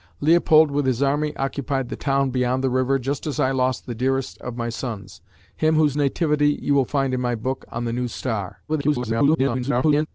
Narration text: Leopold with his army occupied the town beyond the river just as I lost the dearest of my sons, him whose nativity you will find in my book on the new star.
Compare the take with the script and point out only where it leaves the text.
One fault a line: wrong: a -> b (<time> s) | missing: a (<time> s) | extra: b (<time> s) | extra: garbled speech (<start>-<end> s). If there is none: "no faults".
extra: garbled speech (8.7-10.1 s)